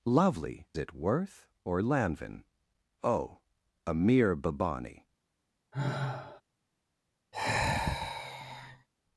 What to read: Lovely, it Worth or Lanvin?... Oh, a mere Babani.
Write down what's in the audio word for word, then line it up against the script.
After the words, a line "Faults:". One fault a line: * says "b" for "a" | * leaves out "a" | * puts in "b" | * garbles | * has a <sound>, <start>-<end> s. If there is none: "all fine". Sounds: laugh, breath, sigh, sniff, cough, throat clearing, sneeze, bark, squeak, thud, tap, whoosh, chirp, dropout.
Lovely, it Worth or Lanvin?... Oh, a mere Babani.
Faults:
* has a sigh, 5.7-6.4 s
* has a sigh, 7.3-8.9 s